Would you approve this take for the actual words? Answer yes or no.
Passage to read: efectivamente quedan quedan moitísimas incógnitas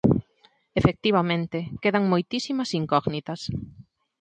no